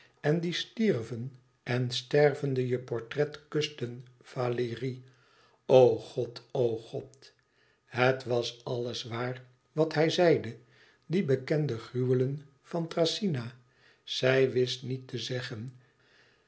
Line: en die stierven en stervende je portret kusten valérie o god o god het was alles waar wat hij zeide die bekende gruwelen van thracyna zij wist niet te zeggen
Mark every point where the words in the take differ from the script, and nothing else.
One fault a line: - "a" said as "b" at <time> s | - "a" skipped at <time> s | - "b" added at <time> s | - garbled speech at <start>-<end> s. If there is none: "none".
none